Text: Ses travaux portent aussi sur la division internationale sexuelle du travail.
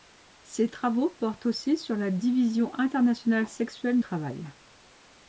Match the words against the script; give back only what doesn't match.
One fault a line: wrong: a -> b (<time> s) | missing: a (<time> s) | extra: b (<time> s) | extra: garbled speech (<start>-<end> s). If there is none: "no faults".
missing: du (4.0 s)